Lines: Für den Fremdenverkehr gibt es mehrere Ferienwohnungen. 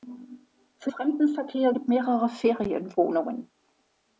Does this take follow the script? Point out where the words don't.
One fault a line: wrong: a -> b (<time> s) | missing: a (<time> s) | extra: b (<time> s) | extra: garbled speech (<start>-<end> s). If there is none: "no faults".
missing: den (0.9 s)
missing: es (1.9 s)